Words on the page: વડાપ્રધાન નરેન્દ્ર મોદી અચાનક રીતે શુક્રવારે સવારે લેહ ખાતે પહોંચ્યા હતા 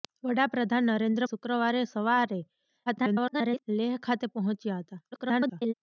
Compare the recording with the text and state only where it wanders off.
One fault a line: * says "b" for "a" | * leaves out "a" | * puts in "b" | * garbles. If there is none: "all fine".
* leaves out "મોદી અચાનક રીતે"
* garbles
* garbles